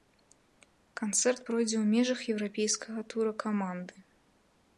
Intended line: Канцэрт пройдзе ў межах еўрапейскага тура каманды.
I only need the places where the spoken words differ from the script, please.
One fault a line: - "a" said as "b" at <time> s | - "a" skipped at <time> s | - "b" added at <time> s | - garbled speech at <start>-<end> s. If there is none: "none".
none